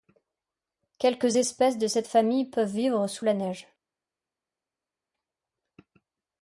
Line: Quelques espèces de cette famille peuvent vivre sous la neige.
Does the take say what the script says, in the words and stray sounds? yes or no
yes